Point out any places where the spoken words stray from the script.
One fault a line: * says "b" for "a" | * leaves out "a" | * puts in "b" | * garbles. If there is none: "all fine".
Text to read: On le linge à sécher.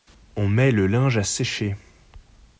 * puts in "met"